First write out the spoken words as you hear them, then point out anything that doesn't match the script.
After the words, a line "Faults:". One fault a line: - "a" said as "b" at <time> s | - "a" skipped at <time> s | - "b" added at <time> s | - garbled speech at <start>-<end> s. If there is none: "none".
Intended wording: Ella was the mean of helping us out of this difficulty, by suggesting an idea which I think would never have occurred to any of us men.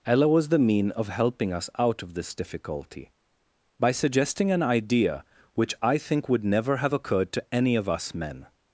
Ella was the mean of helping us out of this difficulty, by suggesting an idea which I think would never have occurred to any of us men.
Faults:
none